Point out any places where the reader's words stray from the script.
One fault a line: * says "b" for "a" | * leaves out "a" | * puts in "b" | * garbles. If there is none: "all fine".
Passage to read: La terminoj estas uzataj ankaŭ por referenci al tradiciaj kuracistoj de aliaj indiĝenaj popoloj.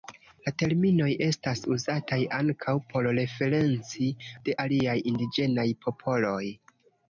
* leaves out "al tradiciaj kuracistoj"